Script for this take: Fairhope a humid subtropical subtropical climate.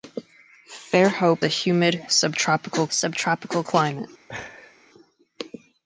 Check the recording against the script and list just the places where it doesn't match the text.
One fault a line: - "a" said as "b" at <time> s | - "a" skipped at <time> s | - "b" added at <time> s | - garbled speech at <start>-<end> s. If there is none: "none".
none